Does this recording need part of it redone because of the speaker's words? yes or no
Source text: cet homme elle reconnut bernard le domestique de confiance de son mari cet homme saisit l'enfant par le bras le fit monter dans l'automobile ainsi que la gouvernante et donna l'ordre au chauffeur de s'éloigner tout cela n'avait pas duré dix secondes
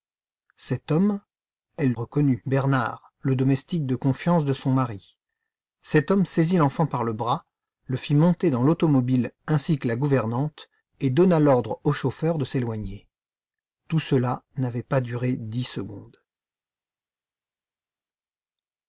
no